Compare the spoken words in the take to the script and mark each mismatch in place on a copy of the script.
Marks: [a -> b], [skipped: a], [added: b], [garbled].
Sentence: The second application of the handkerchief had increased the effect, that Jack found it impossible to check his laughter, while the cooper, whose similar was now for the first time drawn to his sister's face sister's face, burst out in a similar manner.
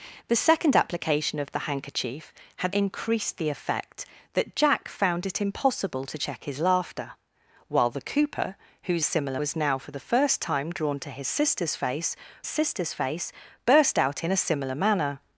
The second application of the handkerchief had increased the effect, that Jack found it impossible to check his laughter, while the cooper, whose similar was now for the first time drawn to his sister's face sister's face, burst out in a similar manner.